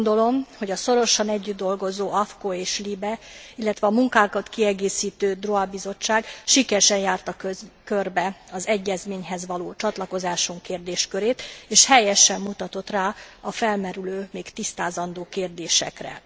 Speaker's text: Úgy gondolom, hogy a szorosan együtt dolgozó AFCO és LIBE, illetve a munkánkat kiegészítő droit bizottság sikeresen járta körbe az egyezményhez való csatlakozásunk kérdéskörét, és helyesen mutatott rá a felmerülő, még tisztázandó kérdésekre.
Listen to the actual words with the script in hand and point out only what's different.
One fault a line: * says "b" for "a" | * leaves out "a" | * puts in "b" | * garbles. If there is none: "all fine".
all fine